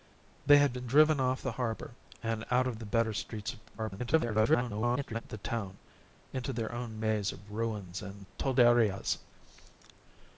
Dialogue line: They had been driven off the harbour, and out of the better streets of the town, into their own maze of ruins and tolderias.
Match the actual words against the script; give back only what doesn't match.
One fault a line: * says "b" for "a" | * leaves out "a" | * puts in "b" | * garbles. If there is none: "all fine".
* garbles